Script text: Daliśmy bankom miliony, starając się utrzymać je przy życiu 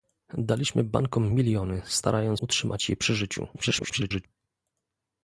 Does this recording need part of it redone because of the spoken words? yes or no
yes